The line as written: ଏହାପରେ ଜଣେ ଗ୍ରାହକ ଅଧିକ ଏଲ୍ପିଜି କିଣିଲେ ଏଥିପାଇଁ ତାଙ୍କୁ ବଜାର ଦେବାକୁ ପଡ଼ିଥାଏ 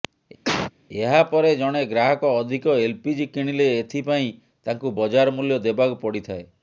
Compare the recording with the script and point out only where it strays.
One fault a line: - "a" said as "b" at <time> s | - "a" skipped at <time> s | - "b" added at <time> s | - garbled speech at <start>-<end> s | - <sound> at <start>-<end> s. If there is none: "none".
- cough at 0.4-0.7 s
- "ମୂଲ୍ୟ" added at 5.4 s